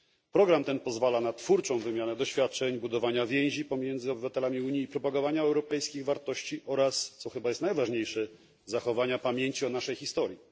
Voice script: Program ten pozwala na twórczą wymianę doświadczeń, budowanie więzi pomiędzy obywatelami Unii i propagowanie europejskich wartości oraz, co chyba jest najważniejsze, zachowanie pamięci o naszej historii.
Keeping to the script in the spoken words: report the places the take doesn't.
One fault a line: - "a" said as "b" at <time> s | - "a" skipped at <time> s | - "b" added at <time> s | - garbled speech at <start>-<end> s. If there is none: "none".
none